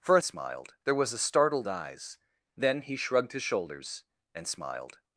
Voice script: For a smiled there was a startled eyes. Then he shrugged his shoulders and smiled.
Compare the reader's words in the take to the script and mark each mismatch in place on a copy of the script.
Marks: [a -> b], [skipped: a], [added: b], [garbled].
For a smiled there was a startled eyes. Then he shrugged his shoulders and smiled.